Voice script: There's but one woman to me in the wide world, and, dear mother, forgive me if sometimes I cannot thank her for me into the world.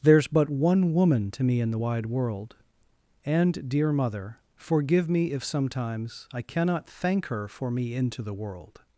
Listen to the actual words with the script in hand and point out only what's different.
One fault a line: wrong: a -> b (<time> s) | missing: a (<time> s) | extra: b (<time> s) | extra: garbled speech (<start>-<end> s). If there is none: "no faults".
no faults